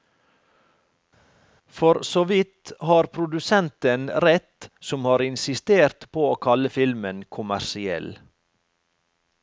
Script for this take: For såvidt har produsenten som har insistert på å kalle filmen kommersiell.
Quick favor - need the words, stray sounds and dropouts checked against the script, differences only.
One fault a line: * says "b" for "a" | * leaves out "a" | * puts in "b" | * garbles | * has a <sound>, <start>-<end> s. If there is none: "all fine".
* puts in "rett"